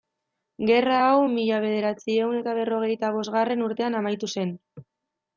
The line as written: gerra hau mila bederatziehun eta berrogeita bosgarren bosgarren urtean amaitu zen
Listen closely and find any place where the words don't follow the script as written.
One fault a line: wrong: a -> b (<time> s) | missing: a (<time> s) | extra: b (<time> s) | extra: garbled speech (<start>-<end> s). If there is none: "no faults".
missing: bosgarren (3.6 s)